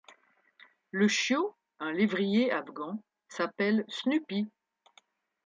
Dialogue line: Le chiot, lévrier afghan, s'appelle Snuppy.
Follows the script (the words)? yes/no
no